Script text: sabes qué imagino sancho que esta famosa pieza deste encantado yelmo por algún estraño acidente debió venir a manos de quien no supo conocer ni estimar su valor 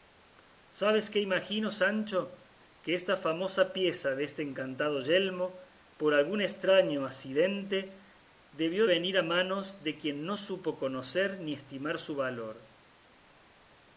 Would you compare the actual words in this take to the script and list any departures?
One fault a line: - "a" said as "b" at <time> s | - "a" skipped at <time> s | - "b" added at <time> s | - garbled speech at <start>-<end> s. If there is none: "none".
none